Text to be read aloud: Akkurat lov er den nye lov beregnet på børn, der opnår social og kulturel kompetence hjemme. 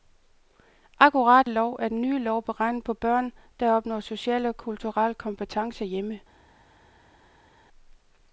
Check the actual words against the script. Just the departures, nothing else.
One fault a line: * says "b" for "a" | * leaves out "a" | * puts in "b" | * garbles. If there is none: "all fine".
all fine